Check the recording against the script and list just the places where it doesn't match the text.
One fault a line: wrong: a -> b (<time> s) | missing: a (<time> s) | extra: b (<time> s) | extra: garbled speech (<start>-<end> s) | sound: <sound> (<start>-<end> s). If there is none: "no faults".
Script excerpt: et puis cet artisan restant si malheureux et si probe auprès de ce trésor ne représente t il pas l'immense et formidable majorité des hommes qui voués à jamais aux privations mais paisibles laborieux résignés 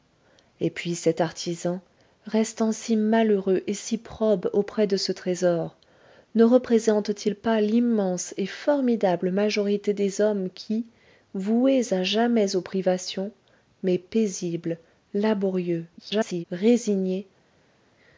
extra: garbled speech (16.0-16.4 s)